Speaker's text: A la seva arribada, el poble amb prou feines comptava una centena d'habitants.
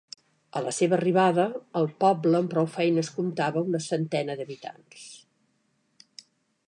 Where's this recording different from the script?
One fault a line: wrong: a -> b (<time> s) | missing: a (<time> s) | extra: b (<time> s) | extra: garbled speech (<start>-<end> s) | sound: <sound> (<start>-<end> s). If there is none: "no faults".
no faults